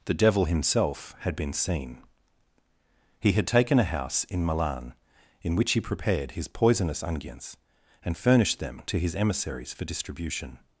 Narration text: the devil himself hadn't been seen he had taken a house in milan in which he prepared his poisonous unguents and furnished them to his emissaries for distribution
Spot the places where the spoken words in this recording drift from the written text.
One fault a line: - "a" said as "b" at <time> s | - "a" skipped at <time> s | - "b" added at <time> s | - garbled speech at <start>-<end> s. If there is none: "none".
- "hadn't" said as "had" at 1.2 s